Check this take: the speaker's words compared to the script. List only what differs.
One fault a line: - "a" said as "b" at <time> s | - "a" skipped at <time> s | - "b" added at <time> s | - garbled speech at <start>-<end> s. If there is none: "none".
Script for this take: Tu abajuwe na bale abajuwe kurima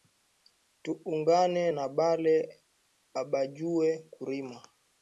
- "abajuwe" said as "ungane" at 1.1 s